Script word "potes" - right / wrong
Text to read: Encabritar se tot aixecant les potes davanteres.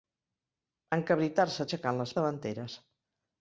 wrong